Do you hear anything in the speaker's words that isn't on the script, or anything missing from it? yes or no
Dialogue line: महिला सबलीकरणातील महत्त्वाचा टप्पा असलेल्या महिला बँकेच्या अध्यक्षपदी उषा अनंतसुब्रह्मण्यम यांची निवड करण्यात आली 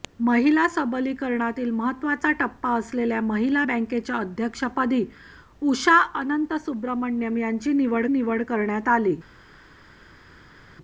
yes